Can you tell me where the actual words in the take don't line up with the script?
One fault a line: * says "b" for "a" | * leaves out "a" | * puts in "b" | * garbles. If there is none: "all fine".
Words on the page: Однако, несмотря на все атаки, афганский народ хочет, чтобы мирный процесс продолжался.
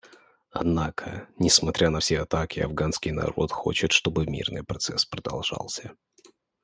all fine